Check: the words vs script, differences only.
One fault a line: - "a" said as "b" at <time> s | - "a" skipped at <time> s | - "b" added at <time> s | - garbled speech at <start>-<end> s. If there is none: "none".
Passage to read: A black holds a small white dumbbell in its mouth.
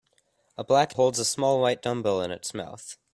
none